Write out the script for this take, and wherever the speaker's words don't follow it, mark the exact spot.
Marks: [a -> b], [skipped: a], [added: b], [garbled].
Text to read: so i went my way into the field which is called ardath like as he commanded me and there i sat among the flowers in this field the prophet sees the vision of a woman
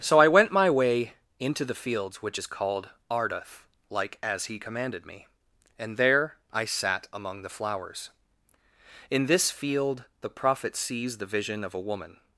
so i went my way into the [field -> fields] which is called ardath like as he commanded me and there i sat among the flowers in this field the prophet sees the vision of a woman